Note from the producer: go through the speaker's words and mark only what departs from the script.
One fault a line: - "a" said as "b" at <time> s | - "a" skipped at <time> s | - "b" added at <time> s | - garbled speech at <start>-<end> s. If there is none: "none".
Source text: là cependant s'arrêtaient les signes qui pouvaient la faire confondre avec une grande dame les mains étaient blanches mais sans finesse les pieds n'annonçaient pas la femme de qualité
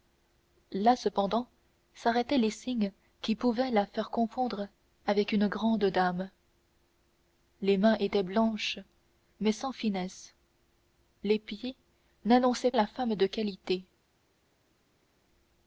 - "pas" skipped at 12.7 s